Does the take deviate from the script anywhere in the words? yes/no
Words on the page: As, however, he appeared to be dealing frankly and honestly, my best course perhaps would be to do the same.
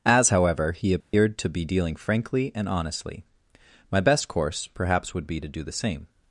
no